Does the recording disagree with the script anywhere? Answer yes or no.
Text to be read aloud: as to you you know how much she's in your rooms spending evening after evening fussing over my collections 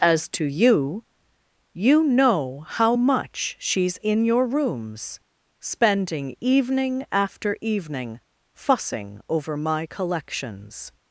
no